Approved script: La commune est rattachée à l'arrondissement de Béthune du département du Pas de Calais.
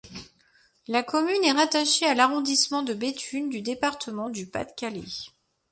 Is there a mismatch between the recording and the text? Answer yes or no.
no